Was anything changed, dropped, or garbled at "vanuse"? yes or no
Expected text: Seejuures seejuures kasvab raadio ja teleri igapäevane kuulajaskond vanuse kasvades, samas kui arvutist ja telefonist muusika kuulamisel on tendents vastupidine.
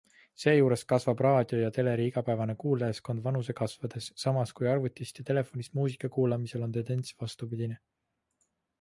no